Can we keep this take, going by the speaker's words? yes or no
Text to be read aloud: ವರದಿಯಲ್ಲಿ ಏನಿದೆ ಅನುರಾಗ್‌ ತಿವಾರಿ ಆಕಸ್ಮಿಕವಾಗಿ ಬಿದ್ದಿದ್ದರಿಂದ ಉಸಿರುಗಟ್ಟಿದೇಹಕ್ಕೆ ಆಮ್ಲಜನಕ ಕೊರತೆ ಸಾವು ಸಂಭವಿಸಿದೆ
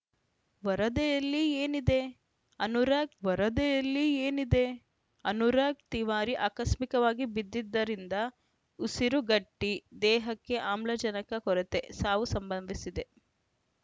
no